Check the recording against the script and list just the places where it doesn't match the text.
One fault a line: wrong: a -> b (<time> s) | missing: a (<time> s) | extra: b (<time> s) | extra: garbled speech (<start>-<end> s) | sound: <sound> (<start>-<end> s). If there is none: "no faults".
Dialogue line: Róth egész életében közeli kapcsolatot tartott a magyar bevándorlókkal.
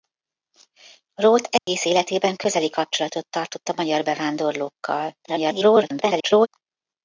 sound: dropout (1.6-1.7 s)
extra: garbled speech (5.2-6.5 s)